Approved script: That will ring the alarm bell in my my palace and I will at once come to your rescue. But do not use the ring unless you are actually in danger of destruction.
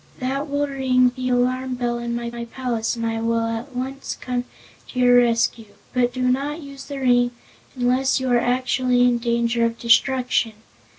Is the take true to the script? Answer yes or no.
yes